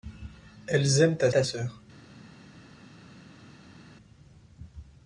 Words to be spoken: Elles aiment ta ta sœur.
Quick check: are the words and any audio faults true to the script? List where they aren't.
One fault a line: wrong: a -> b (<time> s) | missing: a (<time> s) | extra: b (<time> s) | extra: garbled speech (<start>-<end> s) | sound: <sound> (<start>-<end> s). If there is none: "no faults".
no faults